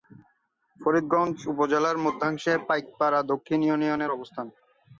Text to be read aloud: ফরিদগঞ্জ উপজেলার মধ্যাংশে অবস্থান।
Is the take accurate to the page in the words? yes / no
no